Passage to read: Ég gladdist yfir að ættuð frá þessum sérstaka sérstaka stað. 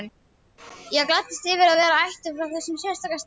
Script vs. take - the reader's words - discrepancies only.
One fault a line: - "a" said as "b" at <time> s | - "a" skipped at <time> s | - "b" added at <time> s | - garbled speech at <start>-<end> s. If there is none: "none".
- "vera" added at 1.8 s
- "sérstaka" skipped at 3.2 s